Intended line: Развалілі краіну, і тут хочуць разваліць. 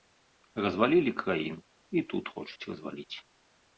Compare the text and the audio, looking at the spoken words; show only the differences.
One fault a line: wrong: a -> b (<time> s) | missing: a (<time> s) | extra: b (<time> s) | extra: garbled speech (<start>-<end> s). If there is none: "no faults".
no faults